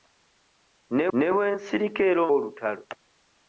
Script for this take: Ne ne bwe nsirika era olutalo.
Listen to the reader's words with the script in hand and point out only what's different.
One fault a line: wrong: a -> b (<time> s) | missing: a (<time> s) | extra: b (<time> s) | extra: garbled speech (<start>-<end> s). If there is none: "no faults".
no faults